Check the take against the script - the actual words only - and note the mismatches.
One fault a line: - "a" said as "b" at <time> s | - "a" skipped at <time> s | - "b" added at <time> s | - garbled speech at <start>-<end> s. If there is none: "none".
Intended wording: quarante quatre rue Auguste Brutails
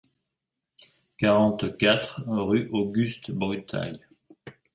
none